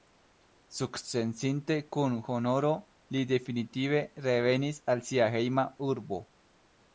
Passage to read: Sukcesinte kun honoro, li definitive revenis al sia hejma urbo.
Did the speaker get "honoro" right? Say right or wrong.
right